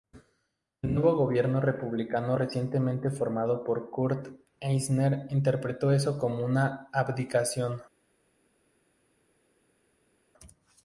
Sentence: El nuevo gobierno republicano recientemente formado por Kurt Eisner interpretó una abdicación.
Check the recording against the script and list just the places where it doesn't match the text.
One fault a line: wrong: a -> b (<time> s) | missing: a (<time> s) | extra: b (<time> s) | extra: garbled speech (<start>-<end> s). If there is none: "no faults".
extra: eso como (5.9 s)